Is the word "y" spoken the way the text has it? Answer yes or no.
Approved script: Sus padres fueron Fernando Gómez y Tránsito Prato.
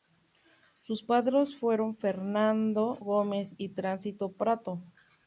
yes